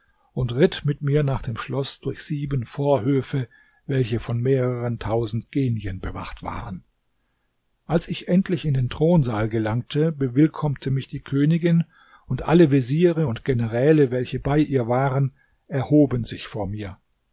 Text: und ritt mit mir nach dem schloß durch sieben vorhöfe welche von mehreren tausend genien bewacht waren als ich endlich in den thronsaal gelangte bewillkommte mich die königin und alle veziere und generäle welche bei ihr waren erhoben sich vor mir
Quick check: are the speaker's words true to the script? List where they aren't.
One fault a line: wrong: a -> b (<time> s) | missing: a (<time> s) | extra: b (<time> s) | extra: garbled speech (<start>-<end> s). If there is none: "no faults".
no faults